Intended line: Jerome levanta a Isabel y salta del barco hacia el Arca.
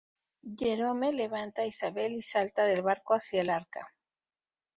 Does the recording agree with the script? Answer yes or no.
yes